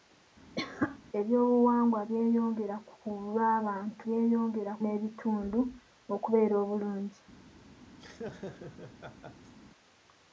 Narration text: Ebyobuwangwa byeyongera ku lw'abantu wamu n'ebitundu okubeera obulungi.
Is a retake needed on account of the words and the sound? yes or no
yes